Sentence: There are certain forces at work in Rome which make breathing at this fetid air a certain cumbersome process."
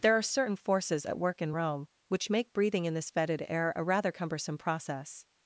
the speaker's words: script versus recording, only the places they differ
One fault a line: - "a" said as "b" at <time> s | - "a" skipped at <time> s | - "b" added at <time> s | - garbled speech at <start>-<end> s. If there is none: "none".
- "at" said as "in" at 2.9 s
- "certain" said as "rather" at 3.8 s